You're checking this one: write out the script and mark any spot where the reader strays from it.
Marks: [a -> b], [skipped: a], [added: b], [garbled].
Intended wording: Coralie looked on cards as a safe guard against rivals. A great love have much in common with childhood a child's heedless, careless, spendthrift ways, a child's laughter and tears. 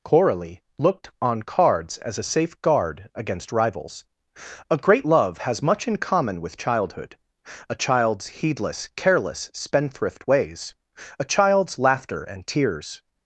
Coralie looked on cards as a safe guard against rivals. A great love [have -> has] much in common with childhood a child's heedless, careless, spendthrift ways, a child's laughter and tears.